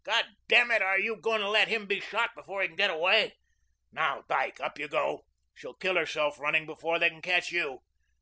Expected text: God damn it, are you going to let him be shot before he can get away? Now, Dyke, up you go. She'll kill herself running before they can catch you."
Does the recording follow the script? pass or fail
pass